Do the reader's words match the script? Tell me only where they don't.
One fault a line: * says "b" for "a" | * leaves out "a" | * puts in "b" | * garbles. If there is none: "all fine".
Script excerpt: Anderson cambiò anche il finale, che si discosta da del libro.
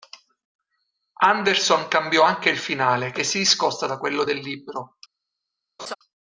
* puts in "quello"